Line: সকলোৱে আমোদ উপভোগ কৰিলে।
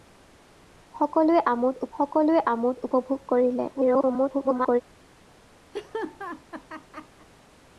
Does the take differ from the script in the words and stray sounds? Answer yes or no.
yes